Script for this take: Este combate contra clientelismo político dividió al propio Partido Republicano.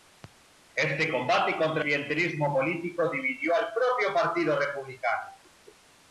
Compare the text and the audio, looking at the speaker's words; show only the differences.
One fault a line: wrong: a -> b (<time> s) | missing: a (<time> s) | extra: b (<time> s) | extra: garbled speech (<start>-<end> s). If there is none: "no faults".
no faults